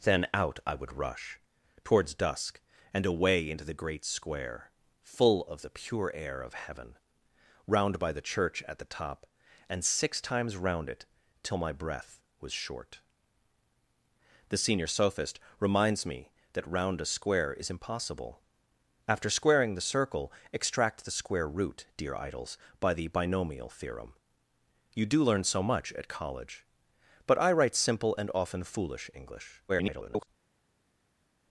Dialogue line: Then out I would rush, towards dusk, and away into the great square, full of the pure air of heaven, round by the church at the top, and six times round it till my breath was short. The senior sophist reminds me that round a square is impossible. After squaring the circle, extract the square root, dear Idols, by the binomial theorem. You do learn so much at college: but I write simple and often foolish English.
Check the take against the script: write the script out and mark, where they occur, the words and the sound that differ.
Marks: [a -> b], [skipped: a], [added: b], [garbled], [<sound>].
Then out I would rush, towards dusk, and away into the great square, full of the pure air of heaven, round by the church at the top, and six times round it till my breath was short. The senior sophist reminds me that round a square is impossible. After squaring the circle, extract the square root, dear Idols, by the binomial theorem. You do learn so much at college: but I write simple and often foolish English. [garbled]